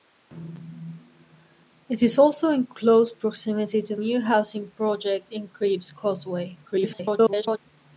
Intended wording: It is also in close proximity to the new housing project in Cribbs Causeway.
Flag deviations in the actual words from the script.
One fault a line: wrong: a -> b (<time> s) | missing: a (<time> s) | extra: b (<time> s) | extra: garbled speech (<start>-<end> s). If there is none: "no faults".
missing: the (4.0 s)
extra: garbled speech (6.6-7.6 s)